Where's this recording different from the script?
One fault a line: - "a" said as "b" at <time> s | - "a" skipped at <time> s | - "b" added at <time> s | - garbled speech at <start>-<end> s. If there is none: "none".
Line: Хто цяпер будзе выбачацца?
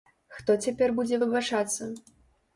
none